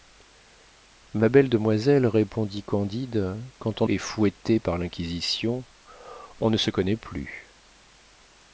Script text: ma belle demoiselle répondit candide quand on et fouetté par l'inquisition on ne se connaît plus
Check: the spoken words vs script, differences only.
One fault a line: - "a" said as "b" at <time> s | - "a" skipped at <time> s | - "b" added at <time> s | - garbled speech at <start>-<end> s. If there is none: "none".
none